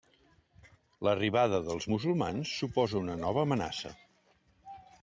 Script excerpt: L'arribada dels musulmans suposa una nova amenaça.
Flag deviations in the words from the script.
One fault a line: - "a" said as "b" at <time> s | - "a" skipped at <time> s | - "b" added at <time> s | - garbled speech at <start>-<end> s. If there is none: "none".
none